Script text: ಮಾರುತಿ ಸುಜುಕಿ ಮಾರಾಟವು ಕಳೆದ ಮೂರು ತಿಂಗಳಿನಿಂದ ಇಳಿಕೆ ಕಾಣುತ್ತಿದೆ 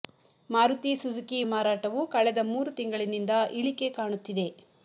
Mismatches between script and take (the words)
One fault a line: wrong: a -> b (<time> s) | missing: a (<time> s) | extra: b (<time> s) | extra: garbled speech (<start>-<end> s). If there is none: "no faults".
no faults